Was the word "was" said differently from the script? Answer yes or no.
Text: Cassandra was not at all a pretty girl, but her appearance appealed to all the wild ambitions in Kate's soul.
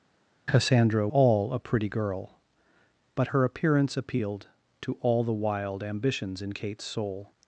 yes